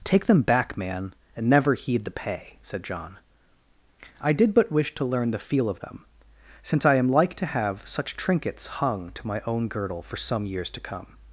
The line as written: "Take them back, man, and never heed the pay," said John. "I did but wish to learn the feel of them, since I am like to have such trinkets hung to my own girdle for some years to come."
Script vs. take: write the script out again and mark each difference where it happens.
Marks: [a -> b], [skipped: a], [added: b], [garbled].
"Take them back, man, and never heed the pay," said John. "I did but wish to learn the feel of them, since I am like to have such trinkets hung to my own girdle for some years to come."